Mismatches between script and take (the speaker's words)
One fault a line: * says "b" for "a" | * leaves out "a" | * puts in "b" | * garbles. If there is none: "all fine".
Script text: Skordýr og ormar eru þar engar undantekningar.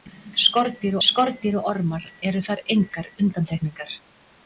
* puts in "skordýr"